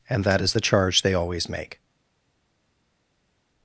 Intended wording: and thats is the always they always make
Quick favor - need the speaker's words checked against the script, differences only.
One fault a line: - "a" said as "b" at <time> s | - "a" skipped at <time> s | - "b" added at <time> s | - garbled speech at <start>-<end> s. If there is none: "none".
- "thats" said as "that" at 0.2 s
- "always" said as "charge" at 0.6 s